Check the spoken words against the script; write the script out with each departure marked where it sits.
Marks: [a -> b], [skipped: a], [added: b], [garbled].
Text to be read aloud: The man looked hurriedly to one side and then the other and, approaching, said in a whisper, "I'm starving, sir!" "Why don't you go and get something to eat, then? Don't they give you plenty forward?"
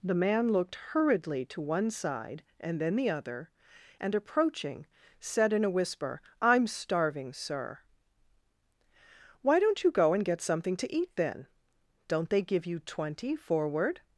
The man looked hurriedly to one side and then the other and, approaching, said in a whisper, "I'm starving, sir!" "Why don't you go and get something to eat, then? Don't they give you [plenty -> twenty] forward?"